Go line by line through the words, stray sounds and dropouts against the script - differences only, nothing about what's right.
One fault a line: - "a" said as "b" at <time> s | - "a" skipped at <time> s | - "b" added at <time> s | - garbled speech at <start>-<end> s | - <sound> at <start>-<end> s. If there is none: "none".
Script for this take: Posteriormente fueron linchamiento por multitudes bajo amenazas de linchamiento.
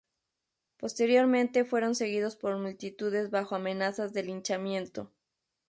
- "linchamiento" said as "seguidos" at 2.0 s